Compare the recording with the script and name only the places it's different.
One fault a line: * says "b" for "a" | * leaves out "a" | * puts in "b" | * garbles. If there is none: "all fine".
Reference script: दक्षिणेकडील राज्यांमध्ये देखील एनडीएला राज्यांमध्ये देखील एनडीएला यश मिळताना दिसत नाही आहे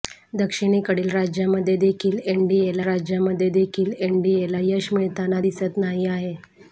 all fine